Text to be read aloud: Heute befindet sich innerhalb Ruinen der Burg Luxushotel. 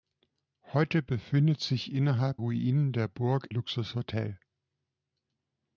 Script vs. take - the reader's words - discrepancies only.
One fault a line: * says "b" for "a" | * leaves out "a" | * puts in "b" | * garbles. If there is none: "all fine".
all fine